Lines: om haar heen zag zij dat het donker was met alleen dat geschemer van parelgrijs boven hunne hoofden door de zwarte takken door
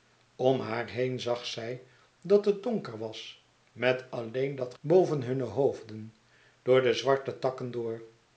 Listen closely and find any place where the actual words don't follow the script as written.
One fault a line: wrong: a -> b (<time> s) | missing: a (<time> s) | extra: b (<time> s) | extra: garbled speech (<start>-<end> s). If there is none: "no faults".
missing: geschemer van parelgrijs (4.7 s)